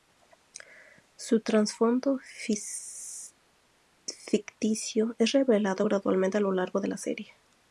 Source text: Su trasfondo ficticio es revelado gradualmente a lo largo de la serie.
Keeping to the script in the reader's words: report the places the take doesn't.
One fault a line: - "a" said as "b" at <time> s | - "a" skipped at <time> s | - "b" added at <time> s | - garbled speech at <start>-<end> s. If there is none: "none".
none